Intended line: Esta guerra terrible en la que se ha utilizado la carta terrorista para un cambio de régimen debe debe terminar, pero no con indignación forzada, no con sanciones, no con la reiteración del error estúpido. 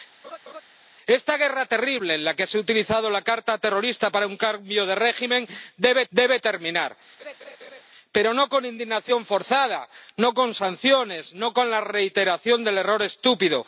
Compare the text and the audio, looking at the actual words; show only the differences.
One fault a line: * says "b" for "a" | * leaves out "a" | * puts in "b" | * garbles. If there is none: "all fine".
all fine